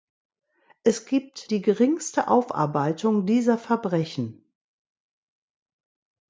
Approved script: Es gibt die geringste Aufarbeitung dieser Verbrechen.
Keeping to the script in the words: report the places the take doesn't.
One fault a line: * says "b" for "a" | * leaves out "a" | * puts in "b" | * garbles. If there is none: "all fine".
all fine